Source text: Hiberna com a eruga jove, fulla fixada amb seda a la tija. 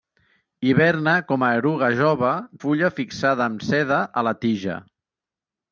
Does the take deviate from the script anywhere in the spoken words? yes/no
no